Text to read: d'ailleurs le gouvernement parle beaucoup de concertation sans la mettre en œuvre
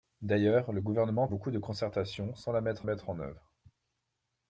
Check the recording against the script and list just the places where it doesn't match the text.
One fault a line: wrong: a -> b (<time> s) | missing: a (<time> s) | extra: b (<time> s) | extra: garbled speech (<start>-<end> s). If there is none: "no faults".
missing: parle (1.3 s)
extra: mettre (2.8 s)